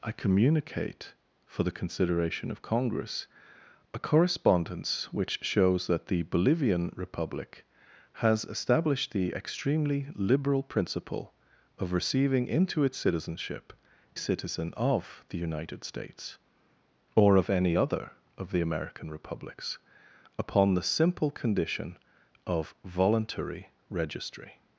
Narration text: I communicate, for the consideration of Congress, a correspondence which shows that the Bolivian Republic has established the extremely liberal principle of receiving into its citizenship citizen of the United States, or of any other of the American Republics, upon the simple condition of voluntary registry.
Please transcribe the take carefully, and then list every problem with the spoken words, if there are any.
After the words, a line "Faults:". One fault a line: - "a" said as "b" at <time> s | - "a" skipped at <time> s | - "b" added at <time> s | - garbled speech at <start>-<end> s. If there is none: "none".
I communicate, for the consideration of Congress, a correspondence which shows that the Bolivian Republic has established the extremely liberal principle of receiving into its citizenship citizen of the United States, or of any other of the American Republics, upon the simple condition of voluntary registry.
Faults:
none